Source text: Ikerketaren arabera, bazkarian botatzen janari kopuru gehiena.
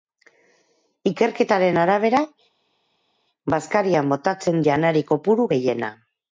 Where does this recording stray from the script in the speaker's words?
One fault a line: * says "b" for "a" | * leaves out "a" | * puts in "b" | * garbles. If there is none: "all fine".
all fine